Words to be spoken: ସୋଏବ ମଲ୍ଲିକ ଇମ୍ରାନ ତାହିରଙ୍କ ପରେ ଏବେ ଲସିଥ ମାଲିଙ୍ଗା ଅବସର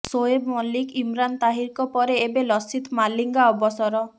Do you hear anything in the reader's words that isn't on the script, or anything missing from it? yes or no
no